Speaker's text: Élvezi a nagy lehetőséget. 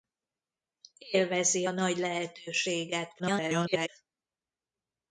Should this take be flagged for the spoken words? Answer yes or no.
yes